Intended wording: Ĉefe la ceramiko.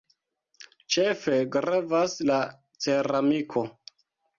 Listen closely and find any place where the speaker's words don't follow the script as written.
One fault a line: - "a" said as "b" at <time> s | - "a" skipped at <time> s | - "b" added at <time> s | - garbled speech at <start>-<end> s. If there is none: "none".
- "gravas" added at 1.6 s